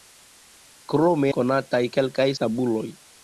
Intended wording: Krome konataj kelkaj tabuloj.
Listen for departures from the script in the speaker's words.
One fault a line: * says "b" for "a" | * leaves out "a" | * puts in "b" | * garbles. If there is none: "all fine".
all fine